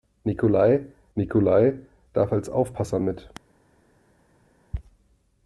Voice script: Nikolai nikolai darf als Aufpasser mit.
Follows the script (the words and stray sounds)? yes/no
yes